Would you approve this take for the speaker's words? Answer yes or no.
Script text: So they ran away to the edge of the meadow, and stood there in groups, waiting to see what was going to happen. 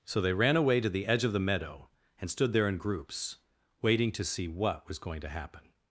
yes